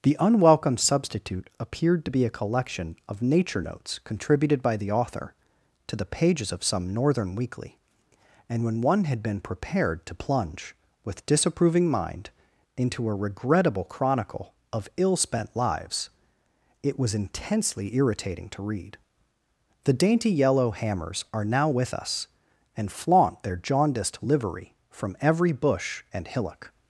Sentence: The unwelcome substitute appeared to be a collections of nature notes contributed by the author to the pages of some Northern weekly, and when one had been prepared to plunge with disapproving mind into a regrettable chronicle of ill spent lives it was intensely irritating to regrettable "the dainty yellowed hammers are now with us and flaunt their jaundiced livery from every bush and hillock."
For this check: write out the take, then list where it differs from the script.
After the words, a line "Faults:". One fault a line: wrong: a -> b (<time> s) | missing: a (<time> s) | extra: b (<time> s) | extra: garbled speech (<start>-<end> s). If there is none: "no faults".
The unwelcome substitute appeared to be a collection of nature notes contributed by the author to the pages of some Northern weekly, and when one had been prepared to plunge with disapproving mind into a regrettable chronicle of ill spent lives it was intensely irritating to read "the dainty yellow hammers are now with us and flaunt their jaundiced livery from every bush and hillock."
Faults:
wrong: collections -> collection (2.3 s)
wrong: regrettable -> read (18.6 s)
wrong: yellowed -> yellow (20.3 s)